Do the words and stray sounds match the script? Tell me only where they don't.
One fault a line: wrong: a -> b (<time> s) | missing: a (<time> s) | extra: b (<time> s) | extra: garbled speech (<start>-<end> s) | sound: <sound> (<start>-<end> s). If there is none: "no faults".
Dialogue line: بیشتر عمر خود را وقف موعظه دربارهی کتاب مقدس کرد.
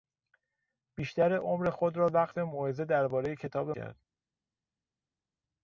missing: مقدس (3.7 s)